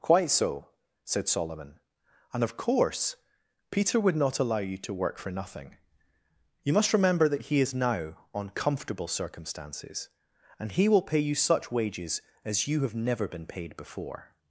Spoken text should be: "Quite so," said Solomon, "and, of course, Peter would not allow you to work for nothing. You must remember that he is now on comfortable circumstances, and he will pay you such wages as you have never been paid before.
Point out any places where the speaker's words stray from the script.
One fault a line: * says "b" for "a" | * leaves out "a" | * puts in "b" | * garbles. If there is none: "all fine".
all fine